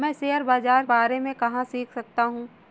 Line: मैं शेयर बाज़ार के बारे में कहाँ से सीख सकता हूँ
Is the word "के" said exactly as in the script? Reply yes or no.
no